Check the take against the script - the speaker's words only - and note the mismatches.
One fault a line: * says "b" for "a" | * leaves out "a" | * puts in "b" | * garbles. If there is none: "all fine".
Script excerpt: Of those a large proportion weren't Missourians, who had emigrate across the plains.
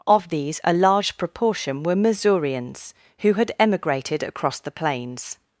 * says "these" for "those"
* says "were" for "weren't"
* says "emigrated" for "emigrate"